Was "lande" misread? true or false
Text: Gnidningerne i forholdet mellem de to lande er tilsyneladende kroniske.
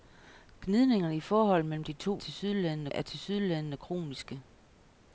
true